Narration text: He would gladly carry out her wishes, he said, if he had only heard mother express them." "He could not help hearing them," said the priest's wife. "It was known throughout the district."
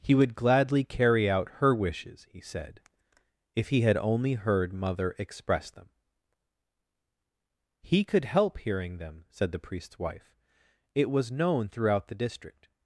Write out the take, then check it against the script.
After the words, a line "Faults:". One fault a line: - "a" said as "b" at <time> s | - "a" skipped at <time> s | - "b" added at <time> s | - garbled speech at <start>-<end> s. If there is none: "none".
He would gladly carry out her wishes, he said, if he had only heard mother express them." "He could help hearing them," said the priest's wife. "It was known throughout the district."
Faults:
- "not" skipped at 8.2 s